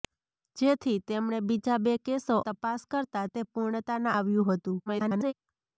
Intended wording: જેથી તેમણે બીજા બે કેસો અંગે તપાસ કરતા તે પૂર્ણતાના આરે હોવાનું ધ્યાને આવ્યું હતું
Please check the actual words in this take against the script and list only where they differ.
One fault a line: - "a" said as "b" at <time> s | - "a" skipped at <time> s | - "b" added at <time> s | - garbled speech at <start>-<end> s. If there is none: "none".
- "અંગે" skipped at 2.4 s
- "આરે હોવાનું ધ્યાને" skipped at 4.1 s
- garbled speech at 4.9-5.3 s